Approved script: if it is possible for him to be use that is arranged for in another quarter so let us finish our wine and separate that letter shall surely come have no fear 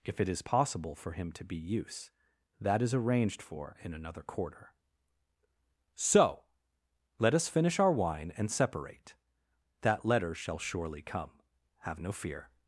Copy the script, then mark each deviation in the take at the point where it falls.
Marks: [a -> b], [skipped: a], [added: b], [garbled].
if it is possible for him to be use that is arranged for in another quarter so let us finish our wine and separate that letter shall surely come have no fear